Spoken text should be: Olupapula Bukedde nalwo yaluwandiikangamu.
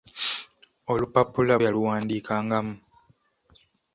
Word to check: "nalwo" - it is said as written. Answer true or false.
false